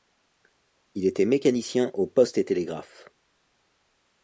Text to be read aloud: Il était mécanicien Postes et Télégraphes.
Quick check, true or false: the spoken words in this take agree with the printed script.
false